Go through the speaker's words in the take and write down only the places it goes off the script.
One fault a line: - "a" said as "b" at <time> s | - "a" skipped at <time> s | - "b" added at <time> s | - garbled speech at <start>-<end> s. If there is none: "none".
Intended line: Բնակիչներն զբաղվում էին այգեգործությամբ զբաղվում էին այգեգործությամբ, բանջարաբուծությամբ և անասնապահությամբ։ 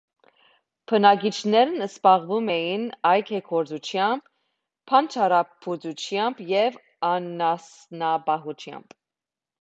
- "զբաղվում էին այգեգործությամբ" skipped at 4.3 s